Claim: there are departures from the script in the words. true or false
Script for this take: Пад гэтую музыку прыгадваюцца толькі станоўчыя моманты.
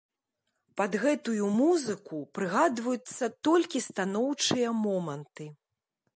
false